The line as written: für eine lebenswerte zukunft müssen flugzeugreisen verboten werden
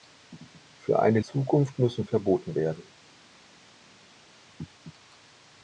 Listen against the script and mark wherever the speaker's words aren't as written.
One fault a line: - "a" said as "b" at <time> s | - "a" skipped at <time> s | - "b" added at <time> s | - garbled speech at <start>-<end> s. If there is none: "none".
- "lebenswerte" skipped at 1.2 s
- "flugzeugreisen" skipped at 2.1 s